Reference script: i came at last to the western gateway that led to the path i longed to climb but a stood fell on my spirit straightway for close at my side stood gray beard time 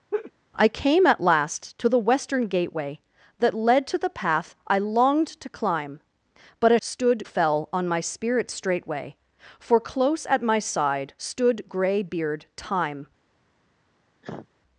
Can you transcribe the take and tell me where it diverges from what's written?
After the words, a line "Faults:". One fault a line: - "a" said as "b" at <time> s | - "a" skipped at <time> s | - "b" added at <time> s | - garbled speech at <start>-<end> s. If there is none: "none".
i came at last to the western gateway that led to the path i longed to climb but a stood fell on my spirit straightway for close at my side stood gray beard time
Faults:
none